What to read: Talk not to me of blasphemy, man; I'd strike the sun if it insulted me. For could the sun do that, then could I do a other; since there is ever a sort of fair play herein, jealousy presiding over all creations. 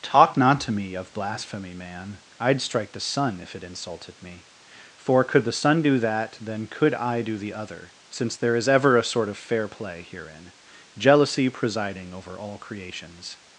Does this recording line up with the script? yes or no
no